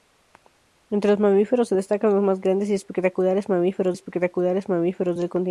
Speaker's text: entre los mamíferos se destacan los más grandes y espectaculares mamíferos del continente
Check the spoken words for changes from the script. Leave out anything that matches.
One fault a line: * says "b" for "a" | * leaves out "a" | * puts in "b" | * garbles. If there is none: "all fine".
* puts in "espectaculares mamíferos"